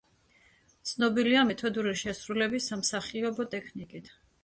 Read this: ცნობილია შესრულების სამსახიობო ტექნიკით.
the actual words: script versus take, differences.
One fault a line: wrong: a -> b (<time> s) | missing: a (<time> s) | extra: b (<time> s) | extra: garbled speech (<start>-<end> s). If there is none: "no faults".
extra: მეთოდური (1.5 s)